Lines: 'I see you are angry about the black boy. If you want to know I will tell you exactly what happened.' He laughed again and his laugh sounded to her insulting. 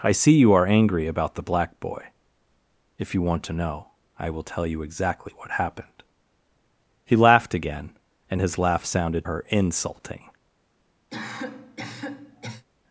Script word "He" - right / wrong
right